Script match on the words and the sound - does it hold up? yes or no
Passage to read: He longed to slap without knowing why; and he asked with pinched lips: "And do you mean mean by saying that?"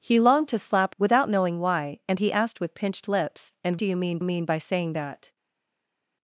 yes